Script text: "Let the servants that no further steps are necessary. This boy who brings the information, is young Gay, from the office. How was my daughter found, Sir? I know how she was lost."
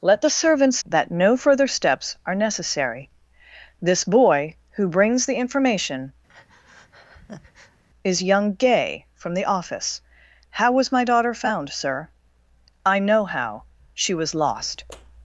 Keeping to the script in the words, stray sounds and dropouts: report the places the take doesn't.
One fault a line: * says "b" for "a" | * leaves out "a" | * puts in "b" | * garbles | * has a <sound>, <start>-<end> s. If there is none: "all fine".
* has a breath, 6.3-7.8 s